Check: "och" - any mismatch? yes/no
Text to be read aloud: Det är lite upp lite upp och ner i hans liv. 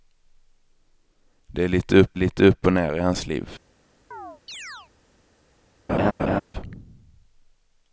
no